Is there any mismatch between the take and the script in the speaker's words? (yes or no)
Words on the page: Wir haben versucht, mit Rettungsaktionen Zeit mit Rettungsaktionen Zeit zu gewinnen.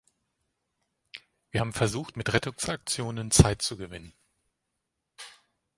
yes